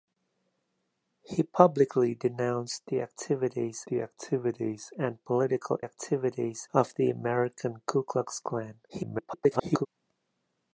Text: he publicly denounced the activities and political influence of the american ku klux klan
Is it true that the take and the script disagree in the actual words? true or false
true